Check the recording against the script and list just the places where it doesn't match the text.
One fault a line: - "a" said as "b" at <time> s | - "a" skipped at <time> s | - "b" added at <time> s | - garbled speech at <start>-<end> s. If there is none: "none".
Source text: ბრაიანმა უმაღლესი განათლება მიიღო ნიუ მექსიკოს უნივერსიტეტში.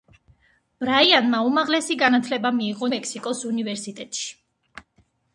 - "ნიუ" skipped at 2.9 s